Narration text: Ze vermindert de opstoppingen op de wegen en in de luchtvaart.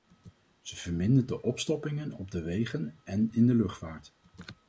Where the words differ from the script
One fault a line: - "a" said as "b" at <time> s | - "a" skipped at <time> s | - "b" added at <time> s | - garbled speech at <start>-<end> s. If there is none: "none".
none